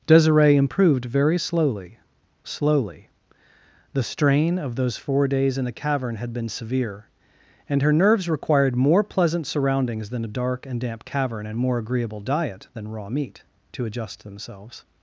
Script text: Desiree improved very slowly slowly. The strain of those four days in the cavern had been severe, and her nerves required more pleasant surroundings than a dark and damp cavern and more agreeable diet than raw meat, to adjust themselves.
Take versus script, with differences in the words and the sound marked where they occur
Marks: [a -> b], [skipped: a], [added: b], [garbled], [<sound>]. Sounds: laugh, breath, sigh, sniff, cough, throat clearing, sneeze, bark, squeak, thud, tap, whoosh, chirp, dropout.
Desiree improved very slowly slowly. The strain of those four days in the cavern had been severe, and her nerves required more pleasant surroundings than a dark and damp cavern and more agreeable diet than raw meat, to adjust themselves.